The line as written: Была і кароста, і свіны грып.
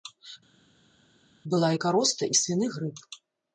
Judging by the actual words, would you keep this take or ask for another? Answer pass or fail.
pass